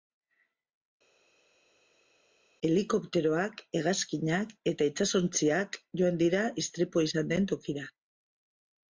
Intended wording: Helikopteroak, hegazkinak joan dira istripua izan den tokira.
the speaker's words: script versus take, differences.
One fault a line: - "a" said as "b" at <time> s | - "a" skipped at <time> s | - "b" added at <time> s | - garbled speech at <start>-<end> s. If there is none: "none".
- "eta itsasontziak" added at 4.7 s